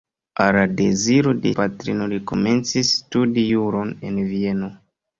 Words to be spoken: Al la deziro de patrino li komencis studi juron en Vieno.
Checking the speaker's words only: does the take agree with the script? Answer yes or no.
yes